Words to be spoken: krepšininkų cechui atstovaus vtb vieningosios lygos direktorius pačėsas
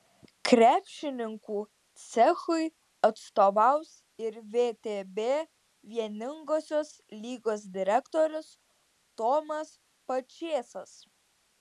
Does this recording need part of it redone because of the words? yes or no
yes